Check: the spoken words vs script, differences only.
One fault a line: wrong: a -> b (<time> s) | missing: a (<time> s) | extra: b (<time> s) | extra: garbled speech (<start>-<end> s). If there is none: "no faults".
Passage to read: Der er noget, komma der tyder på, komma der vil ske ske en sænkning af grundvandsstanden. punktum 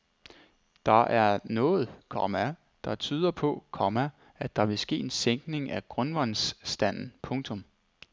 extra: at (4.4 s)
missing: ske (5.0 s)